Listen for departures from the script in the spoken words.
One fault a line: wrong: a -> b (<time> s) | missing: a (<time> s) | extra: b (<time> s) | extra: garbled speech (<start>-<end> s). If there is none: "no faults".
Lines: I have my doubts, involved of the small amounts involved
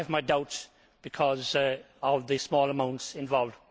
wrong: involved -> because (1.0 s)